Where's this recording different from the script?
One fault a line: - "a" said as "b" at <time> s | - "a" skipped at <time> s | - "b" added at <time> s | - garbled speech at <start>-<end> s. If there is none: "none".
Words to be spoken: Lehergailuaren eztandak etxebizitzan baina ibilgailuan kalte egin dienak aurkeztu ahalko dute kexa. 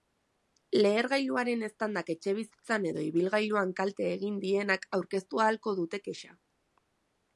- "baina" said as "edo" at 2.9 s